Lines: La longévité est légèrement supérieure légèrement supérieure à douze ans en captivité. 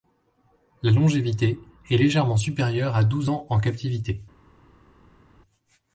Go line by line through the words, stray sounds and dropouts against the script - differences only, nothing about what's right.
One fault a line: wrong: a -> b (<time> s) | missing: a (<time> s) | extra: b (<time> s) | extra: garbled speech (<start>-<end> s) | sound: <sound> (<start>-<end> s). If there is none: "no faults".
missing: légèrement supérieure (2.9 s)